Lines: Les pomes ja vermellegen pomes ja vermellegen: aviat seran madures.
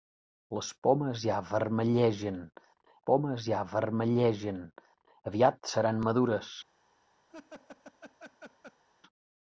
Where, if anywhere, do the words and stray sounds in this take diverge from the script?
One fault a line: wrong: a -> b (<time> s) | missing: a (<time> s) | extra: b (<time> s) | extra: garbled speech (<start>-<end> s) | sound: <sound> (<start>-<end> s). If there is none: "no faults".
sound: laugh (7.3-8.8 s)